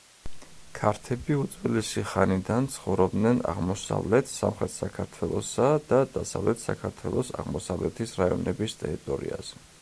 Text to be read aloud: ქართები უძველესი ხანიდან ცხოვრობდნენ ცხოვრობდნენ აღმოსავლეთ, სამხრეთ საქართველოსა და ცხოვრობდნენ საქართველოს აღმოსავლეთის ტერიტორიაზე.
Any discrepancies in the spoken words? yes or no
yes